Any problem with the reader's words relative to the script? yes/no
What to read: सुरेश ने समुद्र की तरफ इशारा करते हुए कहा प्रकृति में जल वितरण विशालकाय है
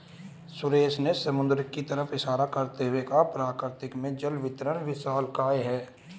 no